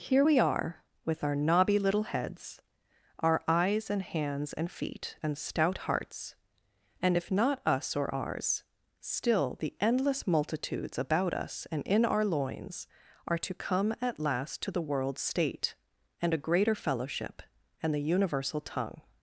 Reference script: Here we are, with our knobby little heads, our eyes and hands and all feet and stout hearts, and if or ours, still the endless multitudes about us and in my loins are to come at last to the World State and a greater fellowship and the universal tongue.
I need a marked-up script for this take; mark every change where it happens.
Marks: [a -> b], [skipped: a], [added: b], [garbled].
Here we are, with our knobby little heads, our eyes and hands and [skipped: all] feet and stout hearts, and if [added: not us] or ours, still the endless multitudes about us and in [my -> our] loins are to come at last to the World State and a greater fellowship and the universal tongue.